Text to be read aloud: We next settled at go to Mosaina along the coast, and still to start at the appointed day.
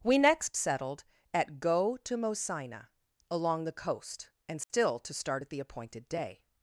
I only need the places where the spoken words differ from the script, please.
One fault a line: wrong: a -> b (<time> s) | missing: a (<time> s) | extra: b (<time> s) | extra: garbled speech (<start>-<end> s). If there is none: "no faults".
no faults